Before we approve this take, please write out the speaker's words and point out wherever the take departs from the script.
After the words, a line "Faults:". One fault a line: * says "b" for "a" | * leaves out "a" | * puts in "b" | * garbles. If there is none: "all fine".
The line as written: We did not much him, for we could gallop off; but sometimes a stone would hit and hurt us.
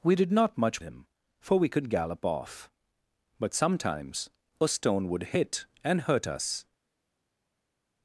We did not much him, for we could gallop off; but sometimes a stone would hit and hurt us.
Faults:
all fine